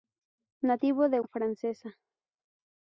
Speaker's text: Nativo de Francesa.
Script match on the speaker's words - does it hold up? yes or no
yes